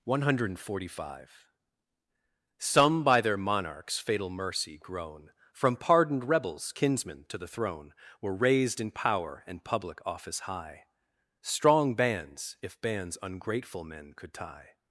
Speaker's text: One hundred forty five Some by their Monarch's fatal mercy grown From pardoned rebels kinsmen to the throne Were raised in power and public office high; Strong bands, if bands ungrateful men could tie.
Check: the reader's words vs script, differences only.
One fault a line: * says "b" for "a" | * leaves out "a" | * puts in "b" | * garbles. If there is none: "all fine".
all fine